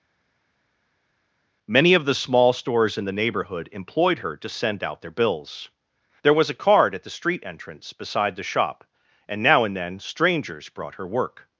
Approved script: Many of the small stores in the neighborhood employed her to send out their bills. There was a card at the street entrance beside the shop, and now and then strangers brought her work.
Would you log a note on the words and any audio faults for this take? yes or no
no